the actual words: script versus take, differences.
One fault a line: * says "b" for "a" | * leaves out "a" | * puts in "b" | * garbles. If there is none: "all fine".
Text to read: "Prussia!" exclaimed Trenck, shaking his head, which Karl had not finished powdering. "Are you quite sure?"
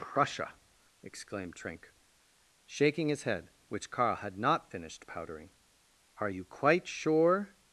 all fine